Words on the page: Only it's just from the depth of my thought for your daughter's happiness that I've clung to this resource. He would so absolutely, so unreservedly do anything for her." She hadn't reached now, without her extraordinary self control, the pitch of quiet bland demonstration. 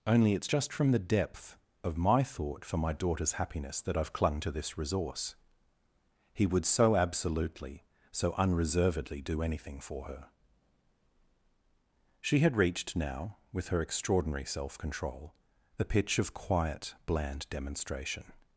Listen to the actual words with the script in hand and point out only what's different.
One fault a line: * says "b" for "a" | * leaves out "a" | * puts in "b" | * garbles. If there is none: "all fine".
* says "my" for "your"
* says "had" for "hadn't"
* says "with" for "without"